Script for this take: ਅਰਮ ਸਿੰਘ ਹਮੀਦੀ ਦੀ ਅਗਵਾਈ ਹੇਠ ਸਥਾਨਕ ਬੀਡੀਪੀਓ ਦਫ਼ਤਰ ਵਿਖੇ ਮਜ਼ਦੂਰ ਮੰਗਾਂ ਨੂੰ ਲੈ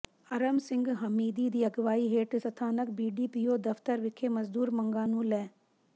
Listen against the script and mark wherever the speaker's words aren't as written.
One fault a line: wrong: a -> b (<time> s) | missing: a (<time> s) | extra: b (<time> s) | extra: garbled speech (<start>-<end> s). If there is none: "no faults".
no faults